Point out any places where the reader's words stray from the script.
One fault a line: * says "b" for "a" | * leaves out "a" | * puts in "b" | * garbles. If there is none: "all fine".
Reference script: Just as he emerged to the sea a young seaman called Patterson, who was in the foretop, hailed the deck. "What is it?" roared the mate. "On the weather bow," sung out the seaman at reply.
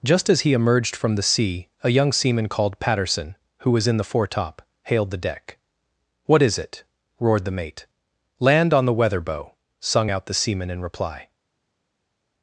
* says "from" for "to"
* puts in "Land"
* says "in" for "at"